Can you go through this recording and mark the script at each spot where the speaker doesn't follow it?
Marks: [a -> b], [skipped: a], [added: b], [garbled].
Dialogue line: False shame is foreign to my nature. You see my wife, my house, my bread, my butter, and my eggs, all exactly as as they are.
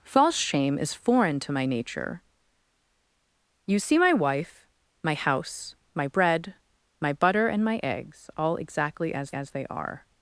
False shame is foreign to my nature. You see my wife, my house, my bread, my butter, and my eggs, all exactly as as they are.